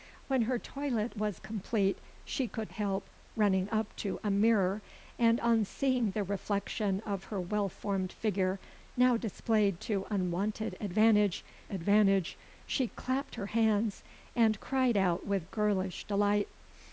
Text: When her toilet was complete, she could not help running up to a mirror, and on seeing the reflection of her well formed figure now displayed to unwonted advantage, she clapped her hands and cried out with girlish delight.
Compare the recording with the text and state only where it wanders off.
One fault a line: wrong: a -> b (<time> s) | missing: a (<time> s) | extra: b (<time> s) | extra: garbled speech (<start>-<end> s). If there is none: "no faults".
missing: not (2.7 s)
extra: advantage (11.7 s)